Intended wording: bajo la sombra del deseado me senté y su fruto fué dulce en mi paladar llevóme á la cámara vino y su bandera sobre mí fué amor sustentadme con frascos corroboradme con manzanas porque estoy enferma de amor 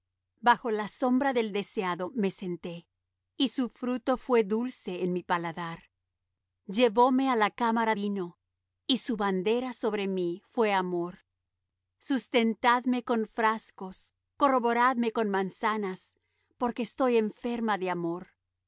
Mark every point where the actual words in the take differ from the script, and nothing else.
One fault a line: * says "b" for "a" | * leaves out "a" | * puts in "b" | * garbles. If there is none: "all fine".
all fine